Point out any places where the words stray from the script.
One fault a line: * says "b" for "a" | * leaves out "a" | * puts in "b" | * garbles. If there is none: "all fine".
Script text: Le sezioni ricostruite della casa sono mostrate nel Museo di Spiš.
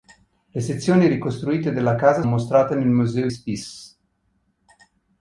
* leaves out "sono"
* leaves out "di"